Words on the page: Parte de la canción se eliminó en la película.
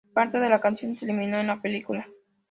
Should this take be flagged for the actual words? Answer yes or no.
no